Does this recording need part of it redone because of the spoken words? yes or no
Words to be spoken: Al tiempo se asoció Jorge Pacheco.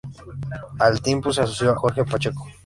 no